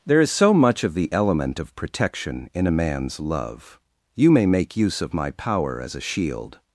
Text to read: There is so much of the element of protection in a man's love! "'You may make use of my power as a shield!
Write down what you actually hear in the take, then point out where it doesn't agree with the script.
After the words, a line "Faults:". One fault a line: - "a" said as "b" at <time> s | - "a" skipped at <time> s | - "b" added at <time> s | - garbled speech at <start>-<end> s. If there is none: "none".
There is so much of the element of protection in a man's love! "'You may make use of my power as a shield!
Faults:
none